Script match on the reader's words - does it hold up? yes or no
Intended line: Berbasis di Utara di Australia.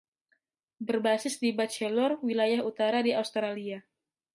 no